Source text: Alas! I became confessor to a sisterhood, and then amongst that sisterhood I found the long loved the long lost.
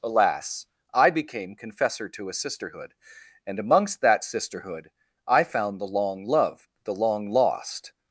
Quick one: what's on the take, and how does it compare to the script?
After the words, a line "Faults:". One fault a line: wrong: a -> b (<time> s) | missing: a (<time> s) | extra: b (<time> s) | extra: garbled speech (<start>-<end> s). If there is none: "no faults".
Alas! I became confessor to a sisterhood, and amongst that sisterhood I found the long loved the long lost.
Faults:
missing: then (3.6 s)